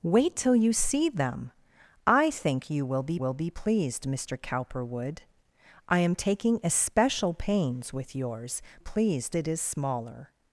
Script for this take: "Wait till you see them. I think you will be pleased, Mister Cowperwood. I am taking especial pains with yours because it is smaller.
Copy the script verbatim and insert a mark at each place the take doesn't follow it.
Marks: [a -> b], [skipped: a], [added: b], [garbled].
"Wait till you see them. I think you will be [added: will be] pleased, Mister Cowperwood. I am taking especial pains with yours [because -> pleased] it is smaller.